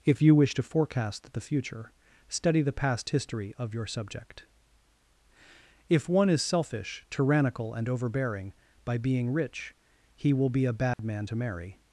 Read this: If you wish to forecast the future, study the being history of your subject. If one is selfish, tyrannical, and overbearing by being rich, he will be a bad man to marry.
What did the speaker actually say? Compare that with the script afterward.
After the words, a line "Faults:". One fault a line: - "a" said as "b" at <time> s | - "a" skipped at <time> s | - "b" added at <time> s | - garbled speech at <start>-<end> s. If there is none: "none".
If you wish to forecast the future, study the past history of your subject. If one is selfish, tyrannical, and overbearing by being rich, he will be a bad man to marry.
Faults:
- "being" said as "past" at 2.7 s